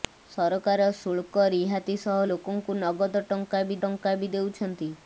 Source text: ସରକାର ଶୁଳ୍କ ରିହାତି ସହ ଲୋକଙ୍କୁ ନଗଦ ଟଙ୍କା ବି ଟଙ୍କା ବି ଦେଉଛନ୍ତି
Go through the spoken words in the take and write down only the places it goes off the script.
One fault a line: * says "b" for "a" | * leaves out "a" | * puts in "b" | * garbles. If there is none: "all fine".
all fine